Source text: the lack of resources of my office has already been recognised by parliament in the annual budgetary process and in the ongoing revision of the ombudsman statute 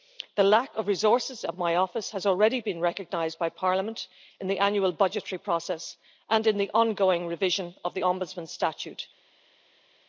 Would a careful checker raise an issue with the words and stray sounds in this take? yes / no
no